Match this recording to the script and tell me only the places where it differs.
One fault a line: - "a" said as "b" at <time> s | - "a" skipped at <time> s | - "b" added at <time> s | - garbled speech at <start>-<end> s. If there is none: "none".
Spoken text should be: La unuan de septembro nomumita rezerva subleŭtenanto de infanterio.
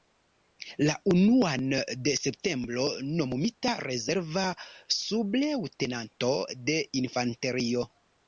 none